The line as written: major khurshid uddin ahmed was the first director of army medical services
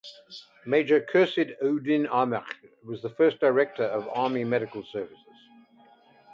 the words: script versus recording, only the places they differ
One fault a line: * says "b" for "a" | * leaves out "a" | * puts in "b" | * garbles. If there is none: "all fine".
all fine